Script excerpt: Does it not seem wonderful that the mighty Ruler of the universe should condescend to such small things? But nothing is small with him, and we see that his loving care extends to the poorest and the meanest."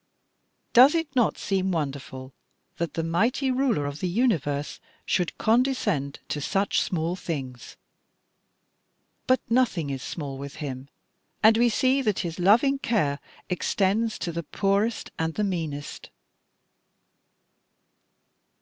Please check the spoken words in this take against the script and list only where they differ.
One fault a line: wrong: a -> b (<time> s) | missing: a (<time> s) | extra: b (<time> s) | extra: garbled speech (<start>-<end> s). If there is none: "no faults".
no faults